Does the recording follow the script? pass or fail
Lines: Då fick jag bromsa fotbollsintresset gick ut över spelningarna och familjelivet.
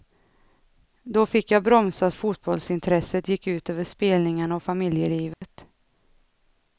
pass